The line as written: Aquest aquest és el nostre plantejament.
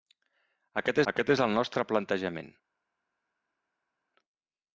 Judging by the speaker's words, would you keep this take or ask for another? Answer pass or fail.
pass